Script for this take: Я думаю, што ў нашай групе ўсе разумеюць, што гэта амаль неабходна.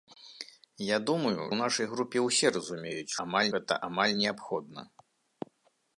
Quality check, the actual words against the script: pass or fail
fail